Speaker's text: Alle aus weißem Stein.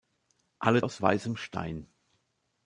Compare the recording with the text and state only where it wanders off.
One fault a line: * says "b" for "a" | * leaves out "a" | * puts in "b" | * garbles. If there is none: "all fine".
all fine